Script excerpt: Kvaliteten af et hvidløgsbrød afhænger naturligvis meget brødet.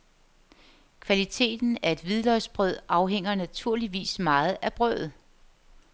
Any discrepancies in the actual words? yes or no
yes